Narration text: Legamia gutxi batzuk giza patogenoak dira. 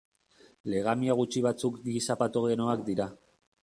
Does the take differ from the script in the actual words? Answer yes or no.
no